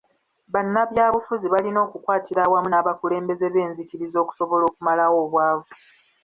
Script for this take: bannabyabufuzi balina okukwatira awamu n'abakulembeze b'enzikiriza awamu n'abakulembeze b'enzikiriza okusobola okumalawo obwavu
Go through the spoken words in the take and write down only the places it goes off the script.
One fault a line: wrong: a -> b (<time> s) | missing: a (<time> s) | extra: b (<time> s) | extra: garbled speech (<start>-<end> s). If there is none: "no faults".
missing: awamu n'abakulembeze b'enzikiriza (4.2 s)